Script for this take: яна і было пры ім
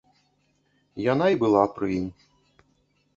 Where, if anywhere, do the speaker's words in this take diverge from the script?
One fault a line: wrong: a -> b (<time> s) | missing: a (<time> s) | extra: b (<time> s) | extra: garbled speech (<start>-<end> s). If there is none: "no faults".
wrong: было -> была (1.4 s)